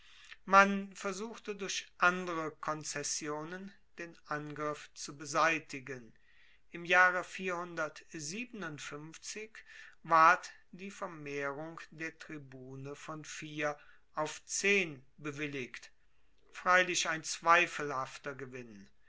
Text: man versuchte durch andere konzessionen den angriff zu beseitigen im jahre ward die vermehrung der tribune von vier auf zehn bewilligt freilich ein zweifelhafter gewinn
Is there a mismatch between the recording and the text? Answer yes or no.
no